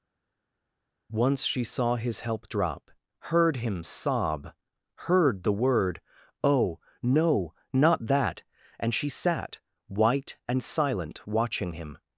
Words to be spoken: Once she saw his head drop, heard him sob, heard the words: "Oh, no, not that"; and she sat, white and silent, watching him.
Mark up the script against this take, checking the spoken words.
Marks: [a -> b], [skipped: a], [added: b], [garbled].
Once she saw his [head -> help] drop, heard him sob, heard the [words: -> word] "Oh, no, not that"; and she sat, white and silent, watching him.